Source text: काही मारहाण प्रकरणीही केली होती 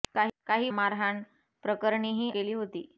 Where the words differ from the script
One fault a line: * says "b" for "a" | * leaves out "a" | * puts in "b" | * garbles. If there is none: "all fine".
all fine